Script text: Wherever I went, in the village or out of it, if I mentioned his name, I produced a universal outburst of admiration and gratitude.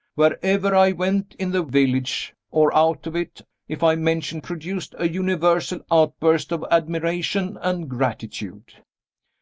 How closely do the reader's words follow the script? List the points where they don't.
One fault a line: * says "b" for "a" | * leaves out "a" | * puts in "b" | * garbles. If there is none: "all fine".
* leaves out "his name I"